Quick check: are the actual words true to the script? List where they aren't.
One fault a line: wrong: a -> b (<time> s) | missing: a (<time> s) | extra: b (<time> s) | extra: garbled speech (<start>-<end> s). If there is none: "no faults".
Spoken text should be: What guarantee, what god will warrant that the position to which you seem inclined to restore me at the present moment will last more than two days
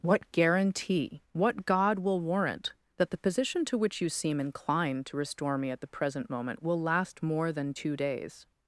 no faults